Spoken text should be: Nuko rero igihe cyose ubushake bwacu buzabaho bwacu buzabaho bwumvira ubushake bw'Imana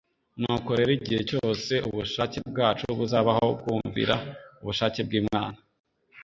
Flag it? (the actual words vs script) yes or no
yes